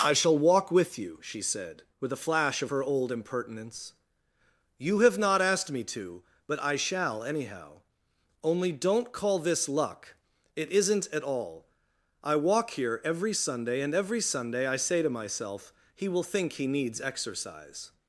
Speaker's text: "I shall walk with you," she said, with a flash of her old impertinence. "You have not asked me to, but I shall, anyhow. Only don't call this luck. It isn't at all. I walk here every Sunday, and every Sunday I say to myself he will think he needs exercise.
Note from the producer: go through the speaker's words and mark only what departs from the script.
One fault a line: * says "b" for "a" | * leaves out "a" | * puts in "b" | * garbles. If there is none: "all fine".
all fine